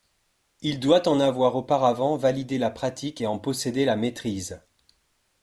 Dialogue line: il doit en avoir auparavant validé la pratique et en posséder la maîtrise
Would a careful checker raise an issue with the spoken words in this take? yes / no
no